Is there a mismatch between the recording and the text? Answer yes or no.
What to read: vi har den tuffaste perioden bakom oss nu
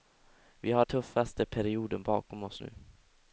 yes